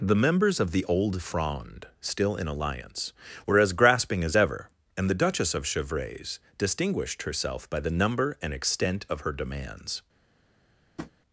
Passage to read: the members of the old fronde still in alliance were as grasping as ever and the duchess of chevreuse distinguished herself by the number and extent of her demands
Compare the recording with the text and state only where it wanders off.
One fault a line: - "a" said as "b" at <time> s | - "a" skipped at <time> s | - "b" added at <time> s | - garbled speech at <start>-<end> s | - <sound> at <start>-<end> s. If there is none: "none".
- tap at 11.0-11.1 s